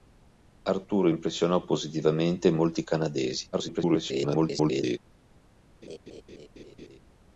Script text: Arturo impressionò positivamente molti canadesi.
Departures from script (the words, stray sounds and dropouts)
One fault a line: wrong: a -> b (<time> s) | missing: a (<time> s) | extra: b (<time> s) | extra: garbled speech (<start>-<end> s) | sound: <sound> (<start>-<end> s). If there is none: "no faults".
extra: garbled speech (3.5-5.0 s)
sound: laugh (5.8-7.0 s)